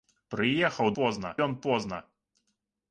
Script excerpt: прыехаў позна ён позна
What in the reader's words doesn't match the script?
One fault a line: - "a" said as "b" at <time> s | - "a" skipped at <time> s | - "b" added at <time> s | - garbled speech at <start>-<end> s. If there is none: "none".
none